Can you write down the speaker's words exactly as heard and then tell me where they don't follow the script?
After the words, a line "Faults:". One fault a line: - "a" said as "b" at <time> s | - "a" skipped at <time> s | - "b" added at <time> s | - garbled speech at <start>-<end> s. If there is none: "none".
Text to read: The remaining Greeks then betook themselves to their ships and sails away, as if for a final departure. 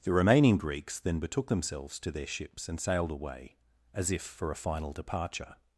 The remaining Greeks then betook themselves to their ships and sailed away, as if for a final departure.
Faults:
- "sails" said as "sailed" at 2.8 s